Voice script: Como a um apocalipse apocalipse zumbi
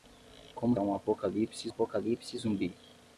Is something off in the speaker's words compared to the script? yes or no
no